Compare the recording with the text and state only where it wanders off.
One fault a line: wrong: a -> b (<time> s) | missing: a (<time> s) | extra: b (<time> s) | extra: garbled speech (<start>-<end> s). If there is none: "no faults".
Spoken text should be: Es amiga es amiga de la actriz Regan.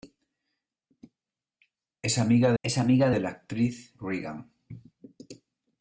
no faults